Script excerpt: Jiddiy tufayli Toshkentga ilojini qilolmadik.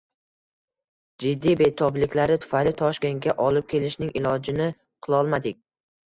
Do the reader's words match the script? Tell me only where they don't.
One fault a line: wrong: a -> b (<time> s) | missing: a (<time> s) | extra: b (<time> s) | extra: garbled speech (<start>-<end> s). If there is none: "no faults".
extra: betobliklari (1.6 s)
extra: olib kelishning (3.5 s)